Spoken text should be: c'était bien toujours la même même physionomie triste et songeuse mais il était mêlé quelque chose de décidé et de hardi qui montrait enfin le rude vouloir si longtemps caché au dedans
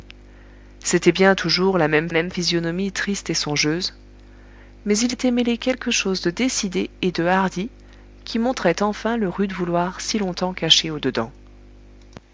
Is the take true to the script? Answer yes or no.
yes